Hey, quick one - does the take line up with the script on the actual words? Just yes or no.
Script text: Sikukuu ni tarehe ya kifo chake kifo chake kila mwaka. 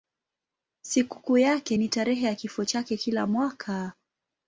no